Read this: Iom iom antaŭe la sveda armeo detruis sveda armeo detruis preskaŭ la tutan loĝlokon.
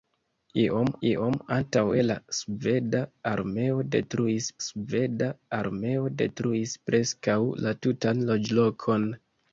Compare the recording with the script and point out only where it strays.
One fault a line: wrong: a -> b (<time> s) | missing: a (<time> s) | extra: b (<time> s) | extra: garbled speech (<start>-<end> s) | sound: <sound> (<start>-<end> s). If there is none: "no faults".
no faults